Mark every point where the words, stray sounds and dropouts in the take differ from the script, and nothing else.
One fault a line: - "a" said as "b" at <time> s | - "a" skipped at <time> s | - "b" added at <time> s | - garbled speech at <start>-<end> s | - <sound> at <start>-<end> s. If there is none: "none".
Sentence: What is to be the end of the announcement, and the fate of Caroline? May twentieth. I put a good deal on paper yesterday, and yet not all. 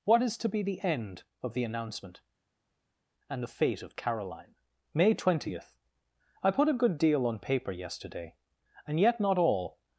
none